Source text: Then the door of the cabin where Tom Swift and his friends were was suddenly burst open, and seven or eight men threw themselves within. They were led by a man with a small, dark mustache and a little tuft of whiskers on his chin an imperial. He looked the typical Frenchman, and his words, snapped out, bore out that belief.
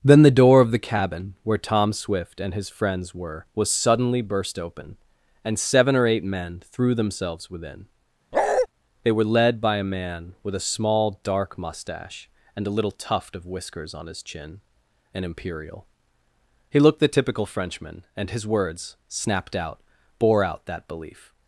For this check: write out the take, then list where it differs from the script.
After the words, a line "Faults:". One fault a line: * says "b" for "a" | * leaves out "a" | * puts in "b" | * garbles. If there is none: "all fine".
Then the door of the cabin where Tom Swift and his friends were was suddenly burst open, and seven or eight men threw themselves within. They were led by a man with a small, dark mustache and a little tuft of whiskers on his chin an imperial. He looked the typical Frenchman, and his words, snapped out, bore out that belief.
Faults:
all fine